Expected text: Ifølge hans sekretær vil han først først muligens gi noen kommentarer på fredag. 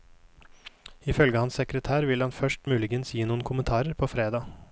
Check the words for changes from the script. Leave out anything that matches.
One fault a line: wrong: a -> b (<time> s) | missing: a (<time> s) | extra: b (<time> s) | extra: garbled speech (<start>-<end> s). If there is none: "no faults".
missing: først (2.7 s)